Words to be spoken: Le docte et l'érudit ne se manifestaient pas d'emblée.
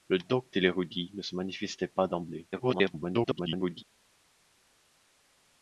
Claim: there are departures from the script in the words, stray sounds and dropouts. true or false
true